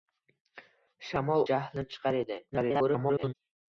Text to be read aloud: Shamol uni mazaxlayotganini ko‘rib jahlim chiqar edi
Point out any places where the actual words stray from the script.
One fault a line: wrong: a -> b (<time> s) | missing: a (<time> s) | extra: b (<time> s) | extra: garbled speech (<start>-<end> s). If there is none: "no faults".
missing: uni mazaxlayotganini ko‘rib (1.4 s)
extra: garbled speech (2.5-3.3 s)